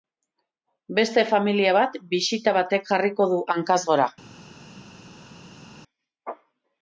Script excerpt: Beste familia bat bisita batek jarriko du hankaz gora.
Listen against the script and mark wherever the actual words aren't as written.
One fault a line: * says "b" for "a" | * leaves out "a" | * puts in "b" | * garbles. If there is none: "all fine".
all fine